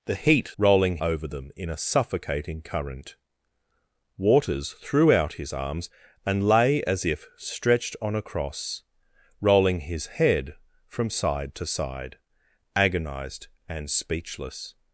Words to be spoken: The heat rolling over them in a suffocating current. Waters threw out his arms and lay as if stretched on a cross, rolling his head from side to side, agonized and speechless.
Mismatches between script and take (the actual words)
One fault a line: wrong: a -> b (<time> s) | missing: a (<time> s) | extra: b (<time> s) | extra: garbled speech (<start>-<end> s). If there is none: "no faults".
no faults